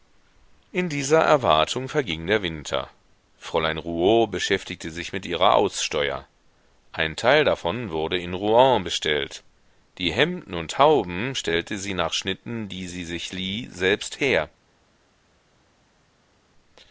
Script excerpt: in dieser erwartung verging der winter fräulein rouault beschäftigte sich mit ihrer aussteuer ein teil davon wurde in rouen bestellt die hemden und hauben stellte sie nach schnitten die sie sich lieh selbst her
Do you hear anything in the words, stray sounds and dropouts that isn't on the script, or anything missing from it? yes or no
no